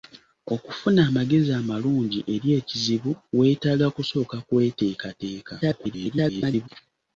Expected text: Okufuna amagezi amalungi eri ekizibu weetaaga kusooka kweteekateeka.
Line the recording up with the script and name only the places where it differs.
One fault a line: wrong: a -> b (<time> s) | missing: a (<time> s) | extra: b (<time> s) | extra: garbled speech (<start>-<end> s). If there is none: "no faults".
extra: garbled speech (5.6-6.7 s)